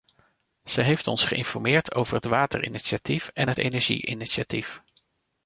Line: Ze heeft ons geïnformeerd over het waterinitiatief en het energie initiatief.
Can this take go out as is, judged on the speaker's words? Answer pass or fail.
pass